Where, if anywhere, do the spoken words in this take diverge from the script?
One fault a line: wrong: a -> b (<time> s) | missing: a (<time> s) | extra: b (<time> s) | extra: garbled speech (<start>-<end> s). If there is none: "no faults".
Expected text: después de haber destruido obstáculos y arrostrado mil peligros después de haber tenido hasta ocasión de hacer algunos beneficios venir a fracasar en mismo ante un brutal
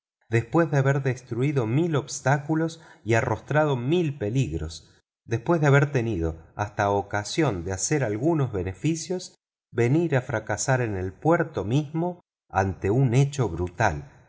extra: mil (1.7 s)
extra: el puerto (11.0 s)
extra: hecho (13.1 s)